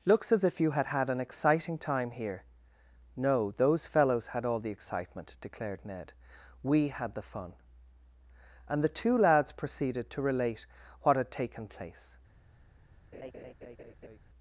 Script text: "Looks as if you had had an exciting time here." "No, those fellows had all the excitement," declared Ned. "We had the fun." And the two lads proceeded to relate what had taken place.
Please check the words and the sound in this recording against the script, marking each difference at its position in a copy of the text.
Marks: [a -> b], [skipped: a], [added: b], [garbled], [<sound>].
"Looks as if you had had an exciting time here." "No, those fellows had all the excitement," declared Ned. "We had the fun." And the two lads proceeded to relate what had taken place. [laugh]